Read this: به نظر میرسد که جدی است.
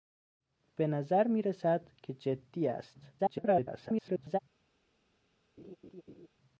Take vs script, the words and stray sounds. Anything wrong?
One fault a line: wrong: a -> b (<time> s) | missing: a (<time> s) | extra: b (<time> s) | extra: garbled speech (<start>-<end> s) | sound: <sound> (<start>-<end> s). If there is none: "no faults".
extra: garbled speech (3.2-4.4 s)
sound: laugh (5.6-6.3 s)